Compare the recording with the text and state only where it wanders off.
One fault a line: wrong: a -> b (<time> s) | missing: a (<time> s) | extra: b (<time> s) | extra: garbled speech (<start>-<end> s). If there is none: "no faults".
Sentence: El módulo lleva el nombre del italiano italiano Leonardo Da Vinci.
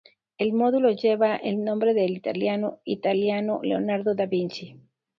no faults